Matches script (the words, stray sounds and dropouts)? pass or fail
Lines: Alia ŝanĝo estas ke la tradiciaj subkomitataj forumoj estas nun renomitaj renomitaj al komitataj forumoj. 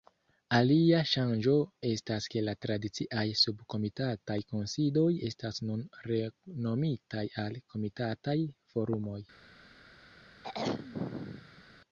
fail